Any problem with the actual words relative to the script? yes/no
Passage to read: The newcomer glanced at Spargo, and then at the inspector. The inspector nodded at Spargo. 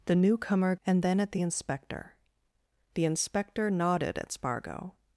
yes